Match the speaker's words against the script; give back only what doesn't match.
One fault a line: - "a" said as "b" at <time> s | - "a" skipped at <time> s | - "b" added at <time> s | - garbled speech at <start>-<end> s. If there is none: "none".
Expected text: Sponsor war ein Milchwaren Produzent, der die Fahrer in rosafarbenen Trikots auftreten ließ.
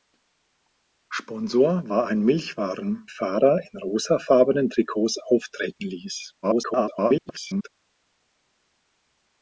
- "Produzent der die" skipped at 3.0 s
- garbled speech at 6.4-7.7 s